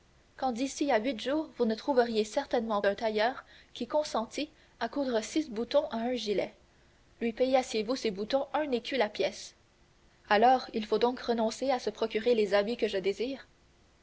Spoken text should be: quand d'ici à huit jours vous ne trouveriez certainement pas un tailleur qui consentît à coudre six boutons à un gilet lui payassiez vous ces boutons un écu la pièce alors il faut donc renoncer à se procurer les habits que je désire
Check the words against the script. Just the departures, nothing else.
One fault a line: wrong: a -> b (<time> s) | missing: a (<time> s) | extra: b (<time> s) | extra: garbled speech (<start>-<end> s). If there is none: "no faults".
missing: pas (2.8 s)